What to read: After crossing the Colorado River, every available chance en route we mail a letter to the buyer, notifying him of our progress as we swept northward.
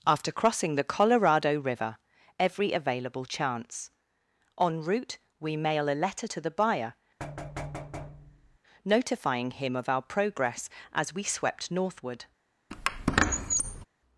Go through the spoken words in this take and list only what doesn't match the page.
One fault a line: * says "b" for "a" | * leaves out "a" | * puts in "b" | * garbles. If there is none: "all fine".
all fine